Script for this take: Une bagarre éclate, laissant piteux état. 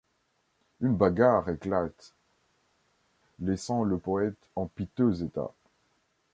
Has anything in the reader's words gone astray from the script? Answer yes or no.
yes